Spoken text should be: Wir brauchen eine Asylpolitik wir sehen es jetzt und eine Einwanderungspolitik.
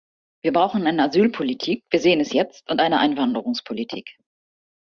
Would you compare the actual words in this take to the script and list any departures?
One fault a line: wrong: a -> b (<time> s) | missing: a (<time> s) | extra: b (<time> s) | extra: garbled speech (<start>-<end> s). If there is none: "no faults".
no faults